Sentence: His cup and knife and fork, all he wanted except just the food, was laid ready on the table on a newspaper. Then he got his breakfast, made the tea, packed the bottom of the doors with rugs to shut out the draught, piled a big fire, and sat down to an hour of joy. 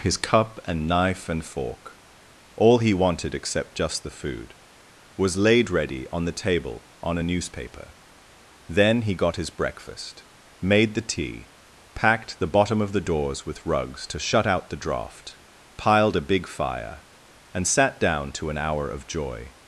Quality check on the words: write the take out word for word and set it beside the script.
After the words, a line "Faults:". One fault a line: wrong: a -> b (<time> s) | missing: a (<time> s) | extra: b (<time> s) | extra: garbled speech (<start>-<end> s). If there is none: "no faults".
His cup and knife and fork, all he wanted except just the food, was laid ready on the table on a newspaper. Then he got his breakfast, made the tea, packed the bottom of the doors with rugs to shut out the draught, piled a big fire, and sat down to an hour of joy.
Faults:
no faults